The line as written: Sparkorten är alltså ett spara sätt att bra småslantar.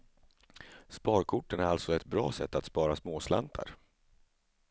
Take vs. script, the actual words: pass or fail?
fail